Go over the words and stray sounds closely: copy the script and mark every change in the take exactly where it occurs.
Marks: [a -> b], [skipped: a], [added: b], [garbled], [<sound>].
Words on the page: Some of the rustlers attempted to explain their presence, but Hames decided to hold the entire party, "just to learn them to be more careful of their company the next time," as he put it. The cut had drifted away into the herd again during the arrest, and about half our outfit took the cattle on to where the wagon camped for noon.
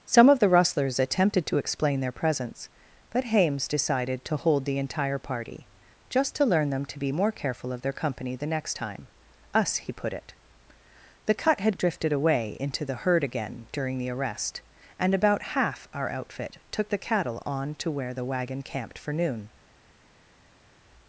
Some of the rustlers attempted to explain their presence, but Hames decided to hold the entire party, "just to learn them to be more careful of their company the next time," [as -> us] he put it. The cut had drifted away into the herd again during the arrest, and about half our outfit took the cattle on to where the wagon camped for noon.